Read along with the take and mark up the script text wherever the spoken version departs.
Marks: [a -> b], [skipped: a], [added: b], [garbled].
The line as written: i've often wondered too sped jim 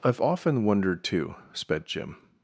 i've often wondered too sped jim